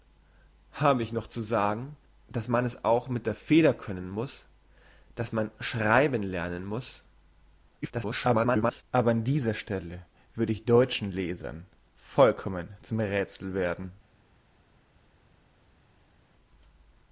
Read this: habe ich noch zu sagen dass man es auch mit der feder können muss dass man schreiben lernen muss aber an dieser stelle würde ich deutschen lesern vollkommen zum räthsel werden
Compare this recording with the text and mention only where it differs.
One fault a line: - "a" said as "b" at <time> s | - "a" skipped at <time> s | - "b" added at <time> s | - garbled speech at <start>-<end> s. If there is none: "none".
- garbled speech at 7.8-8.8 s